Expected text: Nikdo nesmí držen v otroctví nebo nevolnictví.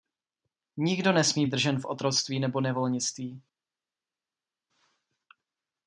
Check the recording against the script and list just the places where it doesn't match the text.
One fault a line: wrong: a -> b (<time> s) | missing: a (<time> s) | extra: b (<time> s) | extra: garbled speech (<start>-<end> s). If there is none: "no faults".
no faults